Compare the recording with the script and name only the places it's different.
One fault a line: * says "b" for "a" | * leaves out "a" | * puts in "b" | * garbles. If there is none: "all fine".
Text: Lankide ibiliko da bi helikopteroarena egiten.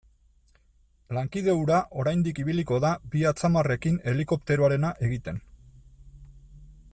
* puts in "hura oraindik"
* puts in "atzamarrekin"